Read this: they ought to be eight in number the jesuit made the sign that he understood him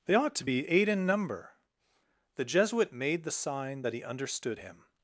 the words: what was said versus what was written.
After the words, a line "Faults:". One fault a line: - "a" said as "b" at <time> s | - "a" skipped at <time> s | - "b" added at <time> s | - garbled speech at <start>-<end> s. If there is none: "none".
they ought to be eight in number the jesuit made the sign that he understood him
Faults:
none